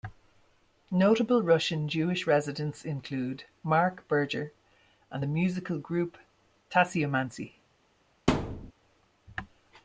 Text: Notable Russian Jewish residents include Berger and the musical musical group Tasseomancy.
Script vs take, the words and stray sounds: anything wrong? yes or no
yes